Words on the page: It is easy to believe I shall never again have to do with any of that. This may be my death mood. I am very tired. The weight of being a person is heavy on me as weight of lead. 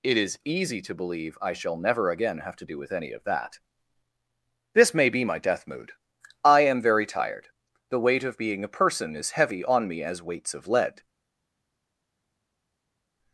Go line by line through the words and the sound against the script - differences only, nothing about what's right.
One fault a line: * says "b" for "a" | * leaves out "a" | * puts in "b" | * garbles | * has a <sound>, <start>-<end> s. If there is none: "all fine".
* says "weights" for "weight"